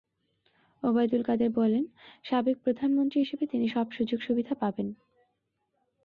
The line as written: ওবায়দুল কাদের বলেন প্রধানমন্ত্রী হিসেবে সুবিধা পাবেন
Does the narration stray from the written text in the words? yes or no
yes